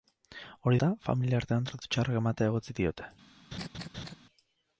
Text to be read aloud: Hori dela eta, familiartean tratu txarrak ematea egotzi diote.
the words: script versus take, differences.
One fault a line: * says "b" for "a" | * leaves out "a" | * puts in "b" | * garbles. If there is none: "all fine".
* leaves out "dela"